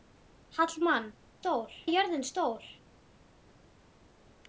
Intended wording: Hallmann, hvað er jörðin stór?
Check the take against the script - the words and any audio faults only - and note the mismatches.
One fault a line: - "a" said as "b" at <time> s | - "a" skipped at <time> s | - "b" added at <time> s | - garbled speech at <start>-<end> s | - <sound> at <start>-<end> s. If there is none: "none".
- "hvað" said as "stór" at 1.4 s